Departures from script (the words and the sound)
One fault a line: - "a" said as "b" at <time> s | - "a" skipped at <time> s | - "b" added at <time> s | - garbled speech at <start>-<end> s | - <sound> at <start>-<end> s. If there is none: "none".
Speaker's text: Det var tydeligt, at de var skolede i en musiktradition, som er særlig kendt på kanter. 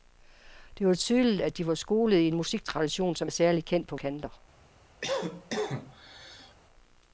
- cough at 5.0-6.6 s